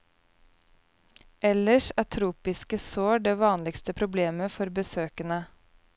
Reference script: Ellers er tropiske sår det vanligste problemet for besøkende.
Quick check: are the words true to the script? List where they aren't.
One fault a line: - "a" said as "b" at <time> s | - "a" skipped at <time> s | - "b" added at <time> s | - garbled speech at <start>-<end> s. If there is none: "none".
none